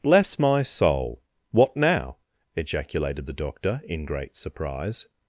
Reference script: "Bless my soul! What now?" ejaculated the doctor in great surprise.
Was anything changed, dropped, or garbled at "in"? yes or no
no